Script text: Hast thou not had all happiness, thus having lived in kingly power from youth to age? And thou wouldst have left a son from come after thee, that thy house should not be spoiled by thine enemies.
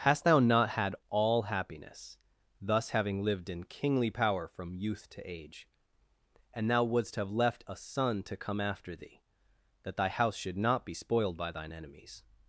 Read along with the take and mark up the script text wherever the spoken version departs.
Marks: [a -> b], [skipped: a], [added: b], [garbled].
Hast thou not had all happiness, thus having lived in kingly power from youth to age? And thou wouldst have left a son [from -> to] come after thee, that thy house should not be spoiled by thine enemies.